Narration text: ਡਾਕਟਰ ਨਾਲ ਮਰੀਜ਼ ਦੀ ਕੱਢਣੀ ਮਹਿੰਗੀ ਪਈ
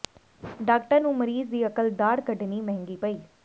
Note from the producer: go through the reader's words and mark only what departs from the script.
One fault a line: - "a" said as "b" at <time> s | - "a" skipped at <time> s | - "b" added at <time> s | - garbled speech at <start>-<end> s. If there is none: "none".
- "ਨਾਲ" said as "ਨੂੰ" at 1.0 s
- "ਅਕਲ ਦਾੜ੍ਹ" added at 1.7 s